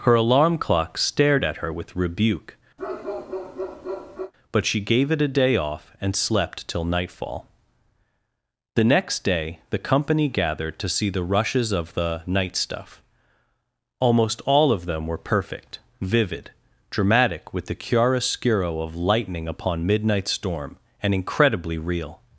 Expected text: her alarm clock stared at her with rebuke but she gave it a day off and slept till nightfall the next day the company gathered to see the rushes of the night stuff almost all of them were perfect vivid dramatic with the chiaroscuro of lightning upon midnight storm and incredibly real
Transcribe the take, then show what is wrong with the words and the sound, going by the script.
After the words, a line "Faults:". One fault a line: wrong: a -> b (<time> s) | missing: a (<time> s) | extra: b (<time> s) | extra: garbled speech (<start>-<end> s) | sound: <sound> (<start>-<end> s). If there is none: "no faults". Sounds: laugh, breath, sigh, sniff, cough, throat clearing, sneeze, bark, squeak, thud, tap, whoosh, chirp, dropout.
her alarm clock stared at her with rebuke but she gave it a day off and slept till nightfall the next day the company gathered to see the rushes of the night stuff almost all of them were perfect vivid dramatic with the chiaroscuro of lightning upon midnight storm and incredibly real
Faults:
sound: bark (2.8-4.3 s)